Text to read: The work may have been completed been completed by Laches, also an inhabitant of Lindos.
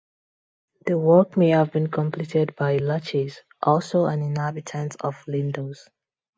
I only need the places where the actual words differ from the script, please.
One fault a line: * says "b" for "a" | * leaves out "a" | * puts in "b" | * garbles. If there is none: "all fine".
* leaves out "been completed"